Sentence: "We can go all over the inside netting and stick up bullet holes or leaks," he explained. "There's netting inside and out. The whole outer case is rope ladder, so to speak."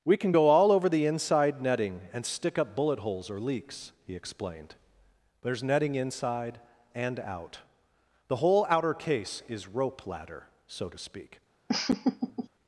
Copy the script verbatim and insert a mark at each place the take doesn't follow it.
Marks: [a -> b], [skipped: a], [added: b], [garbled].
"We can go all over the inside netting and stick up bullet holes or leaks," he explained. "There's netting inside and out. The whole outer case is rope ladder, so to speak."